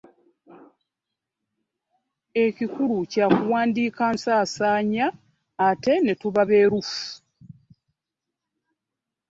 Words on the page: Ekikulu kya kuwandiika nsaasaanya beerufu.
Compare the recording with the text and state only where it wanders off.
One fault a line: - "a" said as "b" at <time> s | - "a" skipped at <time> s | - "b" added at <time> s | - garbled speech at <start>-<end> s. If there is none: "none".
- "ate ne tuba" added at 5.7 s